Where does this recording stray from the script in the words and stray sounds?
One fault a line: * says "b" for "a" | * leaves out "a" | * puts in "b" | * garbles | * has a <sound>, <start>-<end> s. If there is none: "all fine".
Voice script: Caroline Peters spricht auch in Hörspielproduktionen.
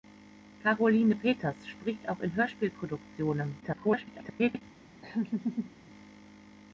* garbles
* has a laugh, 5.0-5.7 s